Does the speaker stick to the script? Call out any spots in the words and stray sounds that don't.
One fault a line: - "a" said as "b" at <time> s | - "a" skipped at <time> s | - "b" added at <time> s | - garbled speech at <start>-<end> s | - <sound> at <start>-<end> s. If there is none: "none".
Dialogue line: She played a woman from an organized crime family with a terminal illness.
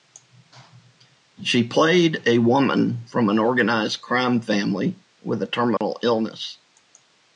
- dropout at 5.8-5.8 s